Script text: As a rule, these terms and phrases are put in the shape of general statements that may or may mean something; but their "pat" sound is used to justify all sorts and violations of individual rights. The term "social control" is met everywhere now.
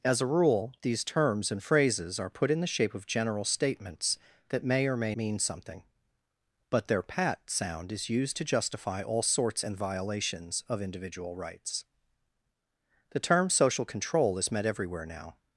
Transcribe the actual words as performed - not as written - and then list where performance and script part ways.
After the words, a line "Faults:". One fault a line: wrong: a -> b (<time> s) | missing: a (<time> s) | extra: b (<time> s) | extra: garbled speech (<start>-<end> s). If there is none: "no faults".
As a rule, these terms and phrases are put in the shape of general statements that may or may mean something; but their "pat" sound is used to justify all sorts and violations of individual rights. The term "social control" is met everywhere now.
Faults:
no faults